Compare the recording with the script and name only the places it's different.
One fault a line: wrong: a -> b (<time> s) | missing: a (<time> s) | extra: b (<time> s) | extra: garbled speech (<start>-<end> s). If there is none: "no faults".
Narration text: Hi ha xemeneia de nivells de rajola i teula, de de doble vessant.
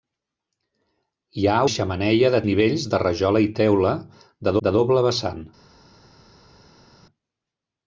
no faults